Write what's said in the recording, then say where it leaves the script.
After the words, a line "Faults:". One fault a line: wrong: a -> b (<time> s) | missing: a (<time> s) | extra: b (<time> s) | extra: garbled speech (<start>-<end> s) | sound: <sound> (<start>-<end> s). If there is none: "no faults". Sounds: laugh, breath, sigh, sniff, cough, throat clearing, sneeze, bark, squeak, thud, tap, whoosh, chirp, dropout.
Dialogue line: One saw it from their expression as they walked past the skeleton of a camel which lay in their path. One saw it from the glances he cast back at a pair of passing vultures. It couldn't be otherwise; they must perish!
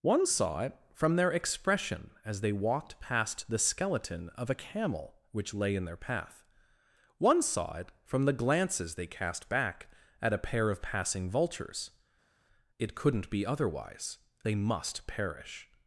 One saw it from their expression as they walked past the skeleton of a camel which lay in their path. One saw it from the glances they cast back at a pair of passing vultures. It couldn't be otherwise; they must perish!
Faults:
wrong: he -> they (8.9 s)